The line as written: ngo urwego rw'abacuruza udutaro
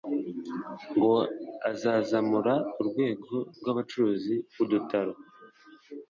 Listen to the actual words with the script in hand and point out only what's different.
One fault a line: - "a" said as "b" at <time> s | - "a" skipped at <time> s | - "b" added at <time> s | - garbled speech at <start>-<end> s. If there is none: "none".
- "azazamura" added at 1.7 s